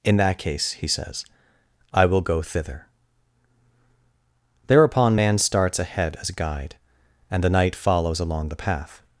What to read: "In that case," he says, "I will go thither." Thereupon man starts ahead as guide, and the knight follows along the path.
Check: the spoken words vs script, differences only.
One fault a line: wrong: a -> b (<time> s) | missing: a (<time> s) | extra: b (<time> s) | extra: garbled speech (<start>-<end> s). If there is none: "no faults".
no faults